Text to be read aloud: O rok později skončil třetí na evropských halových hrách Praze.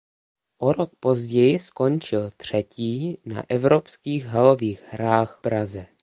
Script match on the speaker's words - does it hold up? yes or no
yes